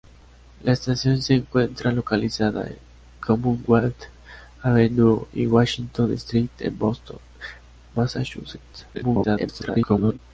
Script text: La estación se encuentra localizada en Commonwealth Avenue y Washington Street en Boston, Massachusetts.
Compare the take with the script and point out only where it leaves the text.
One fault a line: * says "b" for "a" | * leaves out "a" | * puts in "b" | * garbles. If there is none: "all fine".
* garbles